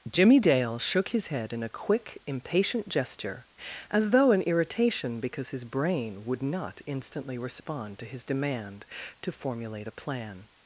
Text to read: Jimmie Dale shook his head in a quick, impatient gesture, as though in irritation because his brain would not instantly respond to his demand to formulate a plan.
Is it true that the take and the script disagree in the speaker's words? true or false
false